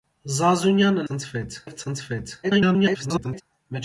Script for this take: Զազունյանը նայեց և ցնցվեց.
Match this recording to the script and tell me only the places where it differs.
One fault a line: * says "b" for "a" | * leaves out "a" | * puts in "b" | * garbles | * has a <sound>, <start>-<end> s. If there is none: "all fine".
* says "ցնցվեց" for "նայեց"
* garbles